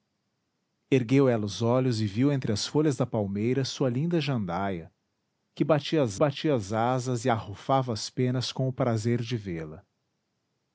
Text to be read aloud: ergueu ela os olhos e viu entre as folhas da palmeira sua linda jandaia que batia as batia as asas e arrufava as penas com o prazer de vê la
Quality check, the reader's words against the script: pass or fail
pass